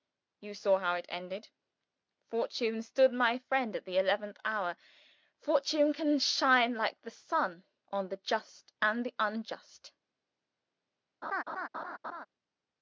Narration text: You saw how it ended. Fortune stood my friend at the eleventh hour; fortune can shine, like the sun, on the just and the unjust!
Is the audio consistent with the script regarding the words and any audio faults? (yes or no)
no